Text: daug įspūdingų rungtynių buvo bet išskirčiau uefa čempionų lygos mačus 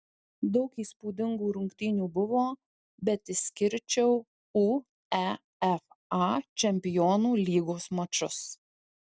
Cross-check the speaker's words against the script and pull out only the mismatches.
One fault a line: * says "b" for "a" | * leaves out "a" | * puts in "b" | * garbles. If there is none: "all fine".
all fine